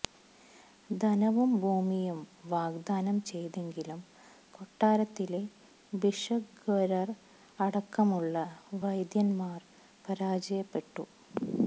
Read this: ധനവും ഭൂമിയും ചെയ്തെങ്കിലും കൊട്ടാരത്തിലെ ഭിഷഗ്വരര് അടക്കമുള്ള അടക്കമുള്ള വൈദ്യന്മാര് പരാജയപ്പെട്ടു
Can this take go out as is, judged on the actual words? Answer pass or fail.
fail